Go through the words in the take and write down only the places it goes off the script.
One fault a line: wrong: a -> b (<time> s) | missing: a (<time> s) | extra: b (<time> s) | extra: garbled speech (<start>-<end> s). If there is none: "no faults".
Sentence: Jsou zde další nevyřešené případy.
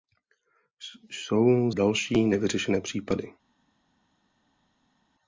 missing: zde (1.7 s)